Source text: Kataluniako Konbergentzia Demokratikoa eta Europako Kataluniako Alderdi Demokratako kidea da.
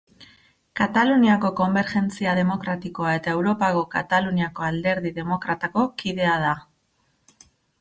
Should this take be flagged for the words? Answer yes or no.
no